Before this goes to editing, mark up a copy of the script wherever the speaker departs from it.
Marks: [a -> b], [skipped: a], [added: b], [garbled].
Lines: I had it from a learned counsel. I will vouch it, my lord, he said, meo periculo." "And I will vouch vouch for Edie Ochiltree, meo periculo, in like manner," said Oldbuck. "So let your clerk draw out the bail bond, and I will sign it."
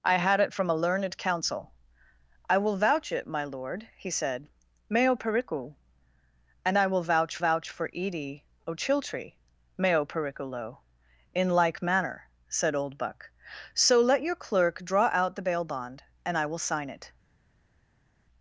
I had it from a learned counsel. I will vouch it, my lord, he said, meo periculo." "And I will vouch vouch for Edie Ochiltree, meo periculo, in like manner," said Oldbuck. "So let your clerk draw out the bail bond, and I will sign it."